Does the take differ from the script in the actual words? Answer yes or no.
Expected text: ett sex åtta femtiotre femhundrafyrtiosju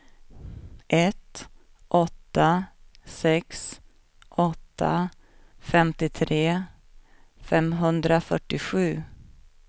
yes